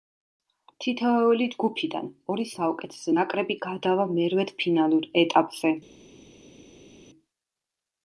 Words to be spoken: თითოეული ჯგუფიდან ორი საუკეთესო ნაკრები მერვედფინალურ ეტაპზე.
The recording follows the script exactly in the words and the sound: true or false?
false